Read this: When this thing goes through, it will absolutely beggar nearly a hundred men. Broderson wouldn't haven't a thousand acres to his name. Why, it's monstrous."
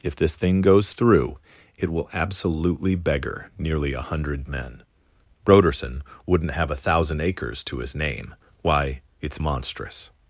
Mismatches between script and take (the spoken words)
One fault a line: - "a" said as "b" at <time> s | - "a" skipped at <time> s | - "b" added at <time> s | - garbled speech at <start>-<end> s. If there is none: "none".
- "When" said as "If" at 0.0 s
- "haven't" said as "have" at 6.5 s